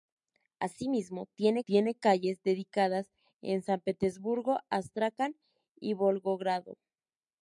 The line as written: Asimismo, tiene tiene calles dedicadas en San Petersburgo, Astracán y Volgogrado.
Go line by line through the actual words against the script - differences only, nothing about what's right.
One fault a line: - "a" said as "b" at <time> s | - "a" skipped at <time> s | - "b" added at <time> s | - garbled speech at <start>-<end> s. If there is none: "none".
none